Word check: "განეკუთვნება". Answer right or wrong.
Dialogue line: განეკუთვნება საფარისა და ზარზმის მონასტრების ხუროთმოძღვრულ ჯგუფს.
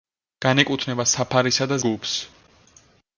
right